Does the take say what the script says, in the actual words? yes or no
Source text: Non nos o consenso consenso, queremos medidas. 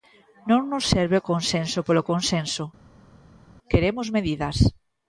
no